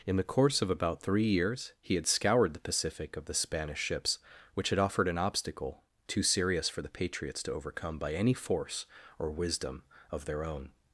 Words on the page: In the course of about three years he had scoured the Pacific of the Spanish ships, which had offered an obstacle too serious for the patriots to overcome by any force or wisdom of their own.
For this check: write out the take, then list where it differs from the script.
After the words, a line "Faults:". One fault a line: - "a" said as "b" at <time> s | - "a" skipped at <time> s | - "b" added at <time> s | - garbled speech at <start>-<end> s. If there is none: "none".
In the course of about three years he had scoured the Pacific of the Spanish ships, which had offered an obstacle too serious for the patriots to overcome by any force or wisdom of their own.
Faults:
none